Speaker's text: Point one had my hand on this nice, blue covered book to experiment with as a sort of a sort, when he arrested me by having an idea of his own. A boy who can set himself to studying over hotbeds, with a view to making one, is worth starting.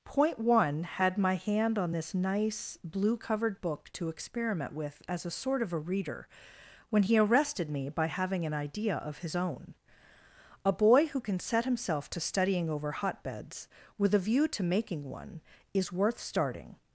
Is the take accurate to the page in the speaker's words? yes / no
no